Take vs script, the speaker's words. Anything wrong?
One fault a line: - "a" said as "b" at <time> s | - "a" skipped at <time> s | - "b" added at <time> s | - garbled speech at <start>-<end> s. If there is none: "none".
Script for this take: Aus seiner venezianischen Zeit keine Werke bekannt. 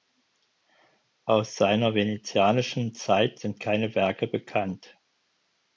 - "sind" added at 3.4 s